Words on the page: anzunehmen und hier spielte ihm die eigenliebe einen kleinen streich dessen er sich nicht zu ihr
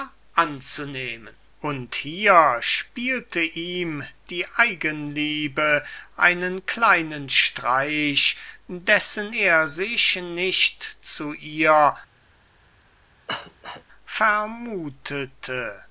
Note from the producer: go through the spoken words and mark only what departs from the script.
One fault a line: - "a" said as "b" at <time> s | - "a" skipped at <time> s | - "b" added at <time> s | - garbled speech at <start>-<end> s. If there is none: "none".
none